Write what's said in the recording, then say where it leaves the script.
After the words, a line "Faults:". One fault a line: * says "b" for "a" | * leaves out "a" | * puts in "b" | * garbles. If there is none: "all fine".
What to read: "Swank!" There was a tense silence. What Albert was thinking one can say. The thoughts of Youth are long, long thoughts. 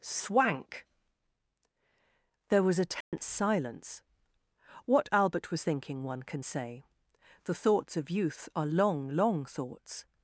"Swank!" There was a tense silence. What Albert was thinking one can say. The thoughts of Youth are long, long thoughts.
Faults:
all fine